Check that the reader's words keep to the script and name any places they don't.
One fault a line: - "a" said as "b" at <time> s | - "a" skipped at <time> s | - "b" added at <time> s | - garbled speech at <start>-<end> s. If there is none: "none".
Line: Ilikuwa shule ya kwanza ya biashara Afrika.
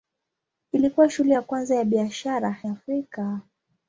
none